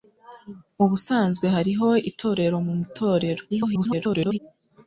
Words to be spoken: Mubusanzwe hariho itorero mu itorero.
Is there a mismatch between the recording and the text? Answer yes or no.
yes